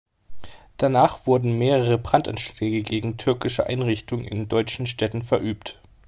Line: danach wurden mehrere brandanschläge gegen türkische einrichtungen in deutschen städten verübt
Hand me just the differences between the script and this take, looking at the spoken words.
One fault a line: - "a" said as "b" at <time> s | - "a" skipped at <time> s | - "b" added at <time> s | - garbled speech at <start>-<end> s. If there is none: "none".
none